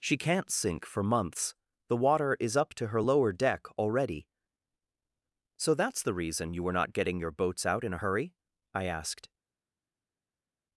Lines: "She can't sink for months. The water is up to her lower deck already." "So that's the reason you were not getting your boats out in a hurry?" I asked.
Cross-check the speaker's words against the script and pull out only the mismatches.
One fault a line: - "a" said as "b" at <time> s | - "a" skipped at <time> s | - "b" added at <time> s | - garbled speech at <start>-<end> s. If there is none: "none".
none